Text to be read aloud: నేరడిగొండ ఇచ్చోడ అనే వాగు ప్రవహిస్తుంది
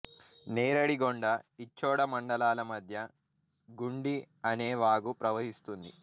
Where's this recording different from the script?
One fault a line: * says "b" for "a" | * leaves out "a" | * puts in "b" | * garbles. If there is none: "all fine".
* puts in "మండలాల మధ్య గుండి"